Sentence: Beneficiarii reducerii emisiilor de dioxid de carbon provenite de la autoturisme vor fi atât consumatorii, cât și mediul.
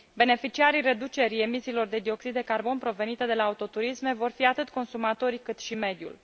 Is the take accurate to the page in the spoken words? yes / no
yes